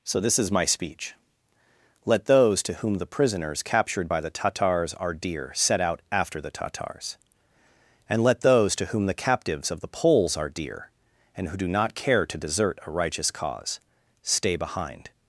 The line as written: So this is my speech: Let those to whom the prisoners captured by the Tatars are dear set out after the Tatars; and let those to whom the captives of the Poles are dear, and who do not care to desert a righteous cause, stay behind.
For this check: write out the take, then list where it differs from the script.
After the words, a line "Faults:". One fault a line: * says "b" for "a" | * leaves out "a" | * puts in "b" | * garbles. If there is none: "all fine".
So this is my speech: Let those to whom the prisoners captured by the Tatars are dear set out after the Tatars; and let those to whom the captives of the Poles are dear, and who do not care to desert a righteous cause, stay behind.
Faults:
all fine